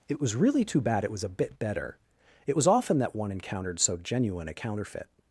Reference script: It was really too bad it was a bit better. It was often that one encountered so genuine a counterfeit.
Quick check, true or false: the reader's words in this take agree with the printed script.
true